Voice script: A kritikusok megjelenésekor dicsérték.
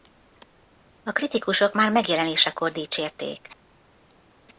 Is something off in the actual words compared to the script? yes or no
yes